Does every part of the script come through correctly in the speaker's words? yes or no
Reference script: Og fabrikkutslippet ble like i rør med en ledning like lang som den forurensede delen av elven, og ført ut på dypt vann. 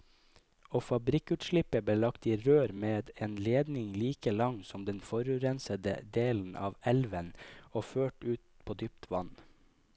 no